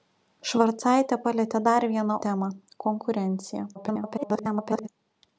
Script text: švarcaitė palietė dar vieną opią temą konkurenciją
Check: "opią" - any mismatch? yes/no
yes